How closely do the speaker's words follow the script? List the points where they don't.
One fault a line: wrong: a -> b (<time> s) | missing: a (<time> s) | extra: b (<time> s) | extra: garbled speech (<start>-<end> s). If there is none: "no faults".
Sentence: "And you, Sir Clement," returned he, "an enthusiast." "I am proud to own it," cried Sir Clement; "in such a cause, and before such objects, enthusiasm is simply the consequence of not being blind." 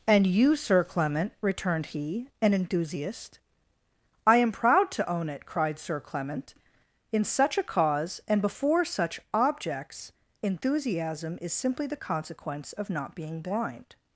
no faults